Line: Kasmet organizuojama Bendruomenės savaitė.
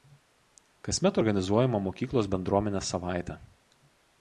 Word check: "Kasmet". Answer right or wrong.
right